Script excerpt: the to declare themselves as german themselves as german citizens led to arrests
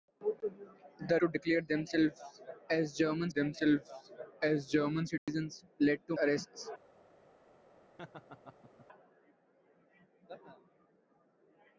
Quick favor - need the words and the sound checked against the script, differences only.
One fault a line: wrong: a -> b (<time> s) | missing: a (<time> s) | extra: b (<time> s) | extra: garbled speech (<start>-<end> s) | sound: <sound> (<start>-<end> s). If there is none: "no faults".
sound: dropout (5.2-5.3 s)
sound: laugh (8.0-8.9 s)